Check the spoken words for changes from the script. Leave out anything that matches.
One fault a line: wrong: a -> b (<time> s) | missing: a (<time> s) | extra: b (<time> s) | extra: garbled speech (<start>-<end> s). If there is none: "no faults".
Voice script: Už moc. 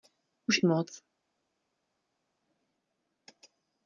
no faults